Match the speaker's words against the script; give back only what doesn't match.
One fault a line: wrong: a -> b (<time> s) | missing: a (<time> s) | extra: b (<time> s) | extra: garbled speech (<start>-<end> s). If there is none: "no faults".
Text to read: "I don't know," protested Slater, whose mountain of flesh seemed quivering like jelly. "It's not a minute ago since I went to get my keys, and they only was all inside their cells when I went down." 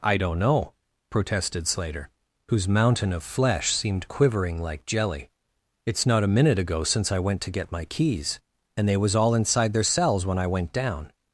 missing: only (9.0 s)